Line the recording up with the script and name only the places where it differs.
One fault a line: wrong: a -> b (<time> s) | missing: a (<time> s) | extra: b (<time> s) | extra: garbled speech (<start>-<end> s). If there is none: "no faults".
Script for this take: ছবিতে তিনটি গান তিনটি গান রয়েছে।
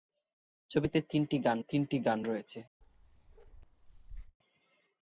no faults